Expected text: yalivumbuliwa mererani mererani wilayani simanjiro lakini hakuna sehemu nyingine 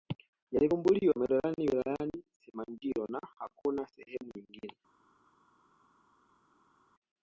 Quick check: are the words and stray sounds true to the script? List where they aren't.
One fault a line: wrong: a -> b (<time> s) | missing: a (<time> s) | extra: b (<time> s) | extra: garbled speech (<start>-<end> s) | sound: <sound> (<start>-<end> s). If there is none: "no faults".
missing: mererani (1.7 s)
wrong: lakini -> na (3.1 s)